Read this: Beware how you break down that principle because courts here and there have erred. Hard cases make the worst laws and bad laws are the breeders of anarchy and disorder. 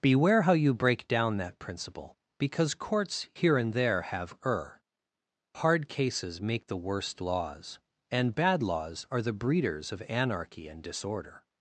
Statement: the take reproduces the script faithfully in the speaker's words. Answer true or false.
false